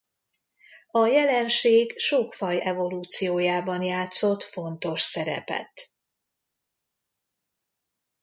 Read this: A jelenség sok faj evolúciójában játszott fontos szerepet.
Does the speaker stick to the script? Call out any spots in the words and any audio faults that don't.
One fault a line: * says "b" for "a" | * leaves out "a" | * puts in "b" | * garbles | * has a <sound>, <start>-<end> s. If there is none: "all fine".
all fine